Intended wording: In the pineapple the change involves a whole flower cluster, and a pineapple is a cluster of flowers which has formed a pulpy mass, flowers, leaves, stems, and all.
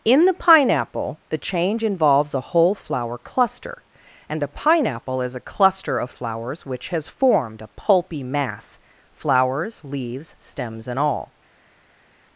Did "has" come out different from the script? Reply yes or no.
no